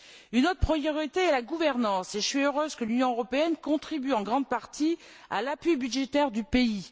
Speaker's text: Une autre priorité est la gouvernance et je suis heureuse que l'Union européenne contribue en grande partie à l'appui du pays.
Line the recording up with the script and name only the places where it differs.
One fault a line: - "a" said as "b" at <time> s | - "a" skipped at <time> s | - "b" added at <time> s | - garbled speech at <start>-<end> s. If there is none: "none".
- "budgétaire" added at 5.8 s